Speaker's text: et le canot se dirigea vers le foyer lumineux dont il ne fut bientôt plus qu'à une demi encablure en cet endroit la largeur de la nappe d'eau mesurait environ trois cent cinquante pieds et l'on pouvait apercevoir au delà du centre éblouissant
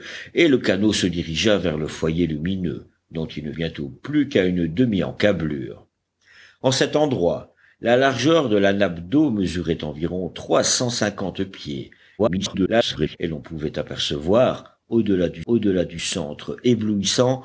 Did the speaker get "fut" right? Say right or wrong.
wrong